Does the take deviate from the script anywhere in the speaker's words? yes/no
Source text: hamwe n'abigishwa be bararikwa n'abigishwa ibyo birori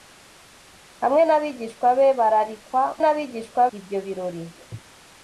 no